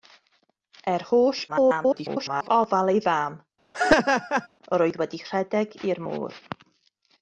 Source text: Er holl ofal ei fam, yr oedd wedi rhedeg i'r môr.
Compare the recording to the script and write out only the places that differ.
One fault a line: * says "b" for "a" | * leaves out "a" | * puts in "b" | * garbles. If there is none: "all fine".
* garbles